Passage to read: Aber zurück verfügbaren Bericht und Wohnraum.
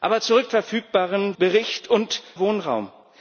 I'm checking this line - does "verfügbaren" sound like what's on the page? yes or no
yes